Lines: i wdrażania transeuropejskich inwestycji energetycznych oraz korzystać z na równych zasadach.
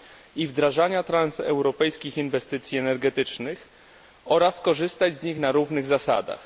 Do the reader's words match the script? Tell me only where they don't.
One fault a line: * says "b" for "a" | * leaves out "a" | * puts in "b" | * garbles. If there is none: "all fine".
* puts in "nich"